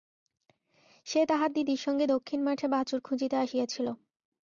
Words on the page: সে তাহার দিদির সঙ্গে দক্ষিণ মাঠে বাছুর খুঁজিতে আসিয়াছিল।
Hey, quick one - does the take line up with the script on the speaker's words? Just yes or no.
yes